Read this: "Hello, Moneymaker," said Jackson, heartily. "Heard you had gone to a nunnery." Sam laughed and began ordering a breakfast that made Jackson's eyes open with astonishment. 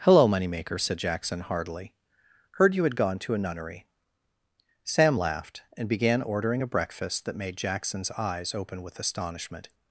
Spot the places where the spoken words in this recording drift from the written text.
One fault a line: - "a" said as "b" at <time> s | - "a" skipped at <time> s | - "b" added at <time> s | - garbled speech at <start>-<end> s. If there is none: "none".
none